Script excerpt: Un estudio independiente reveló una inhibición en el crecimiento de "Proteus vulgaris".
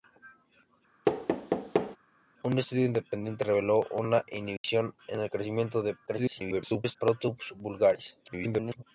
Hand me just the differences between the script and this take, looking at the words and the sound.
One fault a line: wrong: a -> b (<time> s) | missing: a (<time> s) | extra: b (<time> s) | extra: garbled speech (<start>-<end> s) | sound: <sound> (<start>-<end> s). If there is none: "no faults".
sound: thud (1.0-2.0 s)
sound: dropout (4.6-4.6 s)
extra: garbled speech (6.1-7.0 s)
extra: garbled speech (8.2-8.8 s)